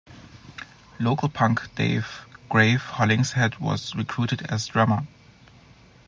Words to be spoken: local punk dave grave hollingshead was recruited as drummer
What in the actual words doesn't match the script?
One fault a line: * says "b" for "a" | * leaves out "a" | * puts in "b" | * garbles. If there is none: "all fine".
all fine